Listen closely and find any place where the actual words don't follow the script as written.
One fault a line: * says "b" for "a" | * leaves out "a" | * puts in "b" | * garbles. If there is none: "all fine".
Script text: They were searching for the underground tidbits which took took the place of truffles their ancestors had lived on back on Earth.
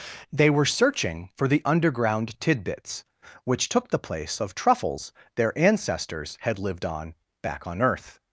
* leaves out "took"